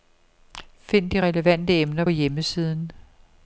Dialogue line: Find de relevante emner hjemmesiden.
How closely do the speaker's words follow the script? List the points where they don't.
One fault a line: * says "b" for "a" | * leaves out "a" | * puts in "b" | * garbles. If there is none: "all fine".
all fine